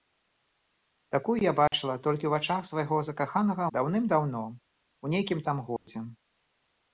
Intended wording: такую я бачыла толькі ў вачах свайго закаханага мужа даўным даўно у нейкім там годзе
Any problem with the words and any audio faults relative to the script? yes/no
yes